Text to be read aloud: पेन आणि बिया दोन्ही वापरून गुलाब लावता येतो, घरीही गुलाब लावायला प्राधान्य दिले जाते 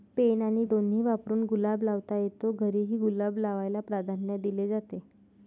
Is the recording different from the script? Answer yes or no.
yes